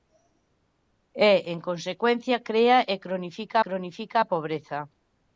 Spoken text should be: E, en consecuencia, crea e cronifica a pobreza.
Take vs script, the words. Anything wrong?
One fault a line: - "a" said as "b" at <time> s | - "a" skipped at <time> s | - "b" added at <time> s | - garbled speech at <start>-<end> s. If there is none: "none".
- "cronifica" added at 3.7 s